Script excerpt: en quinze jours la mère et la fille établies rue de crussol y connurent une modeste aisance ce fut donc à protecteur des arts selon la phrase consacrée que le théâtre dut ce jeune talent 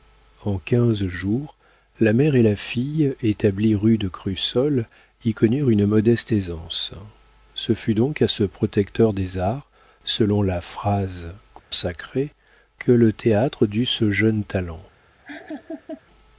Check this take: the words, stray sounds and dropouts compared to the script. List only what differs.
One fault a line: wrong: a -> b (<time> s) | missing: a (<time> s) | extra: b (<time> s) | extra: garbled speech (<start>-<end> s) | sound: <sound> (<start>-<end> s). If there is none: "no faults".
extra: ce (8.3 s)
sound: dropout (11.6-11.7 s)
sound: laugh (15.2-16.0 s)